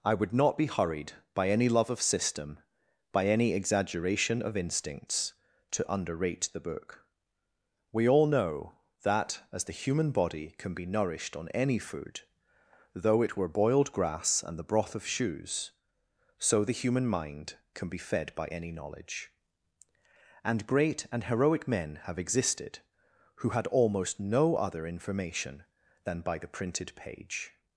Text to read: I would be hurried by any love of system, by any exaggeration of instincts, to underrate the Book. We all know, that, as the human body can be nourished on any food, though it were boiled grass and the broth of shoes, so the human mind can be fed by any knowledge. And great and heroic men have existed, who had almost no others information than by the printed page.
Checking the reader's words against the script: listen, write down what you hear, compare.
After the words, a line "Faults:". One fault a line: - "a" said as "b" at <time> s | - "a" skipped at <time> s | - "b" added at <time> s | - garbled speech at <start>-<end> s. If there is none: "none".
I would not be hurried by any love of system, by any exaggeration of instincts, to underrate the Book. We all know, that, as the human body can be nourished on any food, though it were boiled grass and the broth of shoes, so the human mind can be fed by any knowledge. And great and heroic men have existed, who had almost no other information than by the printed page.
Faults:
- "not" added at 0.3 s
- "others" said as "other" at 24.6 s